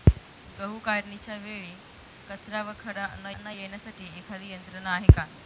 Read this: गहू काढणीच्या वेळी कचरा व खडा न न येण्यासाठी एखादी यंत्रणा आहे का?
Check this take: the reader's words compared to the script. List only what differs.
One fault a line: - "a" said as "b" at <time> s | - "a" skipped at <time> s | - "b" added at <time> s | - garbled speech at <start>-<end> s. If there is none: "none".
none